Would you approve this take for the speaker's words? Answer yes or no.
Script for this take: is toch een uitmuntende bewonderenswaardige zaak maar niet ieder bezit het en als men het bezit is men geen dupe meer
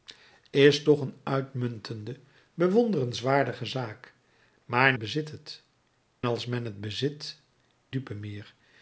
no